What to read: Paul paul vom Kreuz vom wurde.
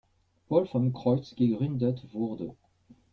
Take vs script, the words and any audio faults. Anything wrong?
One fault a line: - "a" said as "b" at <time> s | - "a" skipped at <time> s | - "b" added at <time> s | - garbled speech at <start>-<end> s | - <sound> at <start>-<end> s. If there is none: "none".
- "paul" skipped at 0.7 s
- "vom" said as "gegründet" at 1.4 s